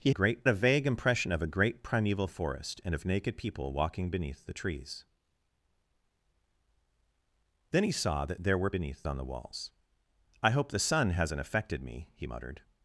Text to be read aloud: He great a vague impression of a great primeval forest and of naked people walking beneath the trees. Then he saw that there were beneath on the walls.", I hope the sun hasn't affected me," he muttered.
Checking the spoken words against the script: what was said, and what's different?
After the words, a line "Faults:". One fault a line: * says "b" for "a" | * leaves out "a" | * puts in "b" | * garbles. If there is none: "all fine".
He great a vague impression of a great primeval forest and of naked people walking beneath the trees. Then he saw that there were beneath on the walls.", I hope the sun hasn't affected me," he muttered.
Faults:
all fine